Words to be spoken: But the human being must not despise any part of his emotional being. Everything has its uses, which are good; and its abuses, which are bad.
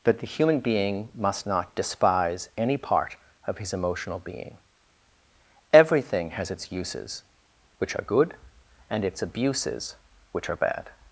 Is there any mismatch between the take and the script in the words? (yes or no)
yes